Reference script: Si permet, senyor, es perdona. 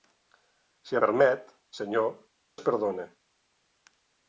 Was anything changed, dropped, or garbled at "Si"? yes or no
no